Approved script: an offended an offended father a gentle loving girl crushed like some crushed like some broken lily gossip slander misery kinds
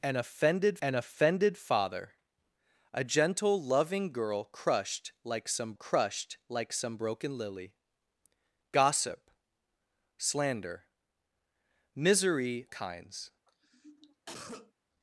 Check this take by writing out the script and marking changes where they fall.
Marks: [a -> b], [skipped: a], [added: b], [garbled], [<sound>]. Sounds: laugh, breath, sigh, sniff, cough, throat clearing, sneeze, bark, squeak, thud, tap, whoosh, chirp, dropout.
an offended an offended father a gentle loving girl crushed like some crushed like some broken lily gossip slander misery kinds [cough]